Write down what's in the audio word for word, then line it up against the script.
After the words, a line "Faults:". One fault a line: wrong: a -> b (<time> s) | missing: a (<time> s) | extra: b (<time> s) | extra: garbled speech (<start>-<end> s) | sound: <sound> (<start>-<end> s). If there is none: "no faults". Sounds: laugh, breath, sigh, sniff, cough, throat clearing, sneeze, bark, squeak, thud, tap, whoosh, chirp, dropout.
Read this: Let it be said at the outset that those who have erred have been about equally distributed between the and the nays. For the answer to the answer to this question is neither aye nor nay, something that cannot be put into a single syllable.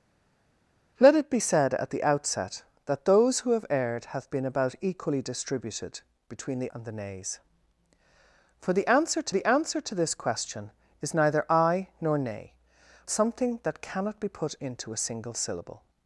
Let it be said at the outset that those who have erred have been about equally distributed between the and the nays. For the answer to the answer to this question is neither aye nor nay, something that cannot be put into a single syllable.
Faults:
no faults